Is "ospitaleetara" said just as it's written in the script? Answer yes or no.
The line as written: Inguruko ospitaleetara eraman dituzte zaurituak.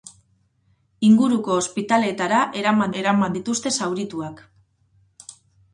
yes